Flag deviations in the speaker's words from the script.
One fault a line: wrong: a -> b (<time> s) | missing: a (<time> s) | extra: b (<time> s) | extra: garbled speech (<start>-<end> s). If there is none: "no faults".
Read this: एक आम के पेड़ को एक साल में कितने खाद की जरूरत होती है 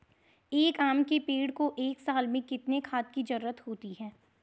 no faults